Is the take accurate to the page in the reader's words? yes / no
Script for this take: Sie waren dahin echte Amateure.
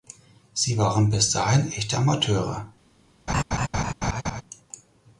no